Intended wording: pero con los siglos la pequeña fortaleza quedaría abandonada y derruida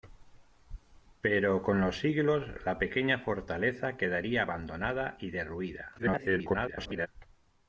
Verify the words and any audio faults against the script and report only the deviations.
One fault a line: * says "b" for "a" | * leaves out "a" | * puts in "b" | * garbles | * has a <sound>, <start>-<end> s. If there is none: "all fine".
* garbles